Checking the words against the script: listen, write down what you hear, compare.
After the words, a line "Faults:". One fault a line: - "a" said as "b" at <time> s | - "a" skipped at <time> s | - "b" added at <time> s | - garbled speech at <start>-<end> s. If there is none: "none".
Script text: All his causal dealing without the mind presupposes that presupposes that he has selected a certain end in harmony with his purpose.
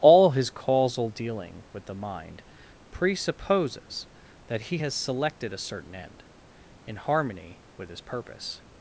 All his causal dealing with the mind presupposes that he has selected a certain end in harmony with his purpose.
Faults:
- "without" said as "with" at 1.7 s
- "presupposes that" skipped at 4.6 s